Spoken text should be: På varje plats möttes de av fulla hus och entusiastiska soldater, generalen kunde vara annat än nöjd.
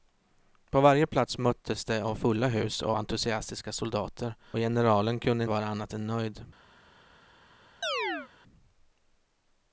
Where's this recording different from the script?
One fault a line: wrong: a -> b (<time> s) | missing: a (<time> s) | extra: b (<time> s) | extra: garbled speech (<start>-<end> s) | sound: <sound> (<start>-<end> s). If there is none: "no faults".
sound: chirp (7.8-8.3 s)